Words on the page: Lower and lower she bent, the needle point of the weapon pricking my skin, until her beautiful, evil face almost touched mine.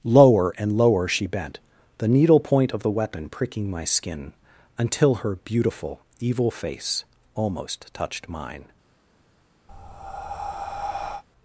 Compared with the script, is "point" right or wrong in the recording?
right